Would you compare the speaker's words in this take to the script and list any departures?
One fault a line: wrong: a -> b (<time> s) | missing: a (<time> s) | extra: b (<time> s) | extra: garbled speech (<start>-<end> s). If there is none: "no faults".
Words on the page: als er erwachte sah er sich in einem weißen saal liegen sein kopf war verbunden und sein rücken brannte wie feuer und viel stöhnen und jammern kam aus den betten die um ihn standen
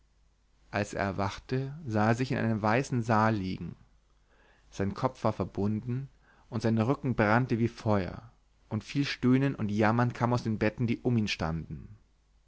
no faults